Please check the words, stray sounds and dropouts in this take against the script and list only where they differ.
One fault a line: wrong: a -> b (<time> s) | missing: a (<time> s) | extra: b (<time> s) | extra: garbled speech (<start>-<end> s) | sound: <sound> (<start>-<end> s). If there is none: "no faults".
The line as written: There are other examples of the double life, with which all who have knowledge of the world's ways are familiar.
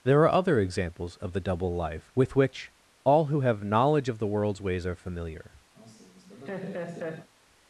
sound: laugh (5.7-7.3 s)